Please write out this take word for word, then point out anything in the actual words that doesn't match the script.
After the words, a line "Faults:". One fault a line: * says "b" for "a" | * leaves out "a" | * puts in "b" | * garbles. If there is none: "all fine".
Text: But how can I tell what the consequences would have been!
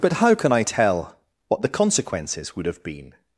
But how can I tell what the consequences would have been!
Faults:
all fine